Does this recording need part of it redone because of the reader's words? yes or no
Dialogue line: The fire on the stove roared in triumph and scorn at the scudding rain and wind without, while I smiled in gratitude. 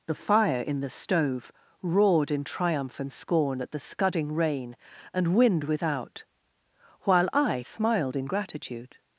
yes